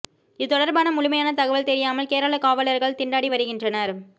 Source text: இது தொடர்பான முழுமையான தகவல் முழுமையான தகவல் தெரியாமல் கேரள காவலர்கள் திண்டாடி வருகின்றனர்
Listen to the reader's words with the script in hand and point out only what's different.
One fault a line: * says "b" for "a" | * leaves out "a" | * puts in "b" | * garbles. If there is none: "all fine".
* leaves out "முழுமையான தகவல்"